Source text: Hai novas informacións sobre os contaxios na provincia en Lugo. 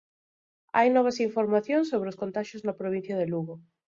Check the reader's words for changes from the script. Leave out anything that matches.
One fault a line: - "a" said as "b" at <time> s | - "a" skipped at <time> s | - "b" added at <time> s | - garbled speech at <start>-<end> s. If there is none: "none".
- "en" said as "de" at 3.2 s